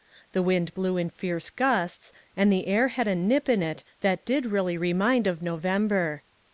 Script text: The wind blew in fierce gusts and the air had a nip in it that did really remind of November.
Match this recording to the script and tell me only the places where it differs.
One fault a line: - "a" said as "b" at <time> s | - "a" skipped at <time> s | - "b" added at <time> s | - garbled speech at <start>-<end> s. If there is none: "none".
none